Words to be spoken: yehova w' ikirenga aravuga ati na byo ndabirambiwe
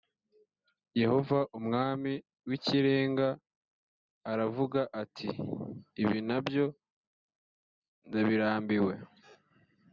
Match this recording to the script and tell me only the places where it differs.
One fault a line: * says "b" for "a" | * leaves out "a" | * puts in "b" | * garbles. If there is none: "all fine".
* puts in "umwami"
* puts in "ibi"